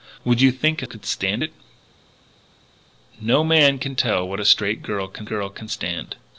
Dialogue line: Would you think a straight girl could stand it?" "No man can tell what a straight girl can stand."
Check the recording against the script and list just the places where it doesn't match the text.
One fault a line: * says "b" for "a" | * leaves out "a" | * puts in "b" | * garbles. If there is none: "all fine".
* leaves out "straight girl"
* puts in "girl can"